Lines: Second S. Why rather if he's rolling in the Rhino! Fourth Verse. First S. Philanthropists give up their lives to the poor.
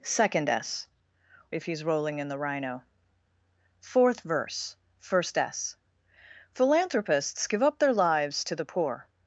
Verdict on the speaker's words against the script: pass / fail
fail